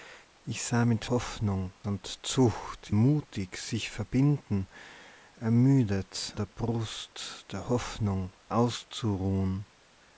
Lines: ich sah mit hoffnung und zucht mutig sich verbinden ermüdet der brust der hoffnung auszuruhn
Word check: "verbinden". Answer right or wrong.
right